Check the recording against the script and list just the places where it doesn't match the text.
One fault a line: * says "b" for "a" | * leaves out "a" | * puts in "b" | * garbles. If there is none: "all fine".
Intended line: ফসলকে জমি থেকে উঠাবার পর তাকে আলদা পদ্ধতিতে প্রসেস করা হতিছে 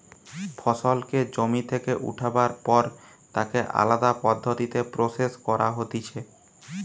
all fine